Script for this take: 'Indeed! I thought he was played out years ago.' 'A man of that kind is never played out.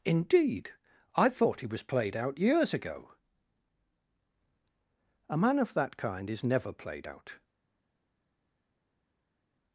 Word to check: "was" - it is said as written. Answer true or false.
true